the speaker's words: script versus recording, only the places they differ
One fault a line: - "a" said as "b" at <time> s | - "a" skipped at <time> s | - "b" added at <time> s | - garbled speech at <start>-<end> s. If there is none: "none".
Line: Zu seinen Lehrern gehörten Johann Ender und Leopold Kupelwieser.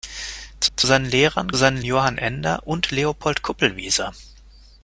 - "zu" added at 0.8 s
- "gehörten" said as "seinen" at 1.6 s